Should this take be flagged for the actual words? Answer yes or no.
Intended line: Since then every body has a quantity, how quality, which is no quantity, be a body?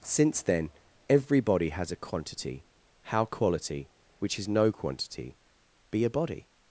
no